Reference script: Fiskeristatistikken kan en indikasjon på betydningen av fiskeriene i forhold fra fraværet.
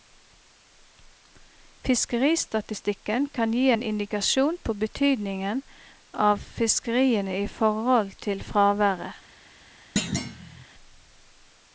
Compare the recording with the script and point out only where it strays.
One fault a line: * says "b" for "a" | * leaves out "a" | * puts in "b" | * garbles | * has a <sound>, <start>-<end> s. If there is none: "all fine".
* puts in "gi"
* says "til" for "fra"
* has a thud, 10.0-10.7 s